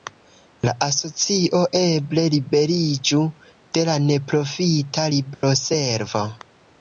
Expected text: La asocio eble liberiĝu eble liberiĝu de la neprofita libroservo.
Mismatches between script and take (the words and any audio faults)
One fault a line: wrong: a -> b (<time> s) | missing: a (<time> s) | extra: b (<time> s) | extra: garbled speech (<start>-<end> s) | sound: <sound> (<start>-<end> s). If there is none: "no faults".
missing: eble liberiĝu (3.2 s)
sound: dropout (5.3-5.4 s)